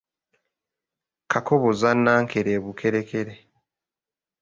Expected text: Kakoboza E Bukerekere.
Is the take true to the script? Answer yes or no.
no